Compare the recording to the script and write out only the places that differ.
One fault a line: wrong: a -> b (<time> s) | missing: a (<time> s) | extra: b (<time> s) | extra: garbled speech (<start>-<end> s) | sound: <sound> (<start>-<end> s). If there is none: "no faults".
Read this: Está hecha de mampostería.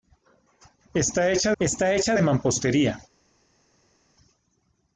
extra: está hecha (1.6 s)